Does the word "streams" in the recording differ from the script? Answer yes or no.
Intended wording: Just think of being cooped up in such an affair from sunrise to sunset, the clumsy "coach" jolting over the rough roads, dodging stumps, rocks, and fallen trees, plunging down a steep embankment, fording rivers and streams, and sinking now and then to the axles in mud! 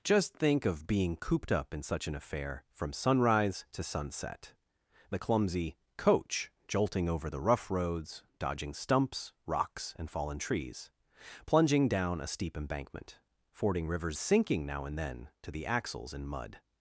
yes